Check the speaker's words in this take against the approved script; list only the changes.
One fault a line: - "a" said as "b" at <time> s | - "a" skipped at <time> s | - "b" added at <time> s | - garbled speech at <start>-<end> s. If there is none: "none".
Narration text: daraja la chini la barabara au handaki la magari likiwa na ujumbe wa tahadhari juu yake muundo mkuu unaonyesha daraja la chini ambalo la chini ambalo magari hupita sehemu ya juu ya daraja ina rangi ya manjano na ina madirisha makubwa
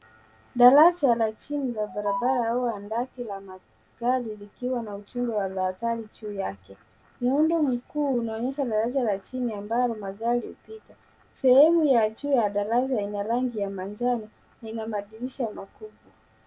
- "la chini ambalo" skipped at 10.0 s